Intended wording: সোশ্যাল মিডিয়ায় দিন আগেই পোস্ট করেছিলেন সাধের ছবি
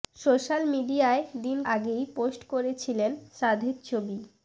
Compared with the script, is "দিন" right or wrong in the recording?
right